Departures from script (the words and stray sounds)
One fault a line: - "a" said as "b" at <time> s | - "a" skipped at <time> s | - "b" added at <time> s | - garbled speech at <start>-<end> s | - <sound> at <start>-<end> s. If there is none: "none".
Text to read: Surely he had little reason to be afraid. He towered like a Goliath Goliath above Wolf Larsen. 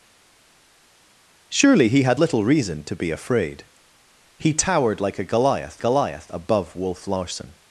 none